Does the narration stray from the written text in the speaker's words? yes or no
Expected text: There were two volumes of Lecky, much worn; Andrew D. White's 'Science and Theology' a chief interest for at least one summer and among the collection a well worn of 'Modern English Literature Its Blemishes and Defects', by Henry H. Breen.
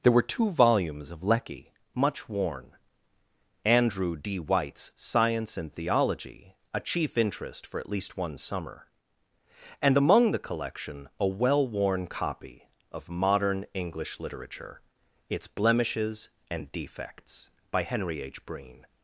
yes